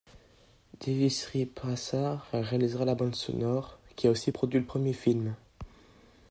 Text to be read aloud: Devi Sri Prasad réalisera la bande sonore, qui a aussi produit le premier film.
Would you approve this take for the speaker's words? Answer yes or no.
yes